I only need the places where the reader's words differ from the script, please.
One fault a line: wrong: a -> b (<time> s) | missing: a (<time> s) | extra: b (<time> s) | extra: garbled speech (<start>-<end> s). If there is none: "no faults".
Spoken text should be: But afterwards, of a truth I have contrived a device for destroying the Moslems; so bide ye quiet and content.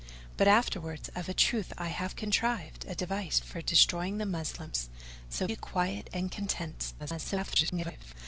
missing: bide (5.5 s)
extra: garbled speech (7.0-8.1 s)